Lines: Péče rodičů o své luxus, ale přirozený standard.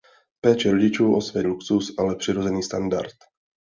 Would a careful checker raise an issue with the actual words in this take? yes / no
no